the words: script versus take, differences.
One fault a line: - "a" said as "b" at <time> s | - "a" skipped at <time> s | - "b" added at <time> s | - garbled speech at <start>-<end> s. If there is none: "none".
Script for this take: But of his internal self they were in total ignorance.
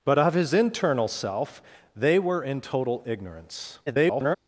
- garbled speech at 3.9-4.4 s